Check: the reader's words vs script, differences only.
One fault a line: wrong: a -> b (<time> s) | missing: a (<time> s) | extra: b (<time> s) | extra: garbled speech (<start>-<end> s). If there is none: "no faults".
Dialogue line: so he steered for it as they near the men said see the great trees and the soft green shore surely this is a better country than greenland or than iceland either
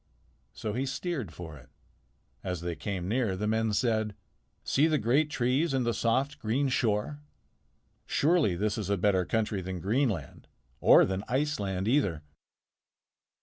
extra: came (2.8 s)